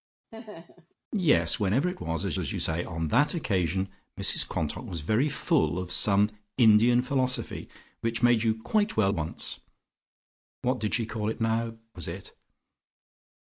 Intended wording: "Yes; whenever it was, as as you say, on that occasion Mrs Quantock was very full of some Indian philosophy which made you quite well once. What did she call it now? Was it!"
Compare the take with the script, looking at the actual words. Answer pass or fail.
pass